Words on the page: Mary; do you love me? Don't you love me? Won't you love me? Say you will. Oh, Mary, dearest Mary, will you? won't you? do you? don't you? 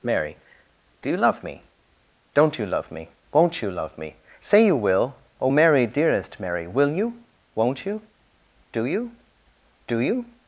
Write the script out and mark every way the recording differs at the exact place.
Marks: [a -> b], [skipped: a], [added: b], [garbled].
Mary; do you love me? Don't you love me? Won't you love me? Say you will. Oh, Mary, dearest Mary, will you? won't you? do you? [don't -> do] you?